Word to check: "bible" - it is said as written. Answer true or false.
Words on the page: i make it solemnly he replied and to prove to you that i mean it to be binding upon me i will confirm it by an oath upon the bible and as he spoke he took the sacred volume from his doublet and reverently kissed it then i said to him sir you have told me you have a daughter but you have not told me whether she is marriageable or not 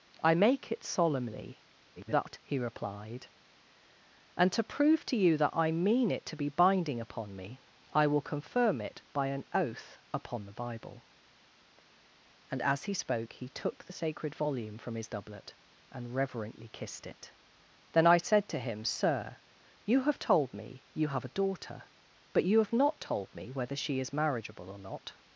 true